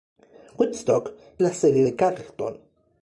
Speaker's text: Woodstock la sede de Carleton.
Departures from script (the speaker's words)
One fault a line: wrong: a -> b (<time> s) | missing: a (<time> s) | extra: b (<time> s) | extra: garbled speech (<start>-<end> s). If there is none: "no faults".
no faults